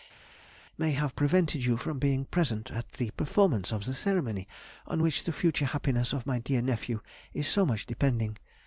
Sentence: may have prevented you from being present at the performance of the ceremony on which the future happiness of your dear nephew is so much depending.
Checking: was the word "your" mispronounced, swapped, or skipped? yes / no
yes